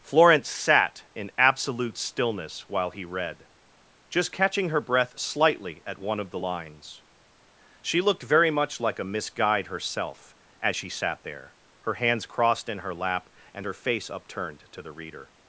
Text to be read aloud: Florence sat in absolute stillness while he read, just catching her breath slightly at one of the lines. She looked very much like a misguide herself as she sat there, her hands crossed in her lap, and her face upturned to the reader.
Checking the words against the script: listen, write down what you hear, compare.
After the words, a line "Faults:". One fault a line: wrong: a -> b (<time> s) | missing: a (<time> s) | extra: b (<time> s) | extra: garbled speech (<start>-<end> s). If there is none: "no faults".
Florence sat in absolute stillness while he read, just catching her breath slightly at one of the lines. She looked very much like a misguide herself as she sat there, her hands crossed in her lap, and her face upturned to the reader.
Faults:
no faults